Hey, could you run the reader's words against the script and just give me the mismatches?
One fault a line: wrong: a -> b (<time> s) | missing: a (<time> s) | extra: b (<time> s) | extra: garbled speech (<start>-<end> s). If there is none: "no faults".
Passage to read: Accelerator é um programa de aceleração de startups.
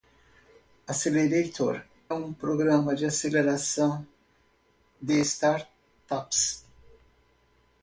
missing: é (1.9 s)